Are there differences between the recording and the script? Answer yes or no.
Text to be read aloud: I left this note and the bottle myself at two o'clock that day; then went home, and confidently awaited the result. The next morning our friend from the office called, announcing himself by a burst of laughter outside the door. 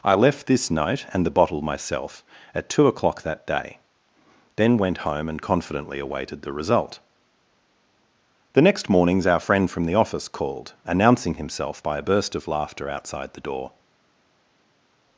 yes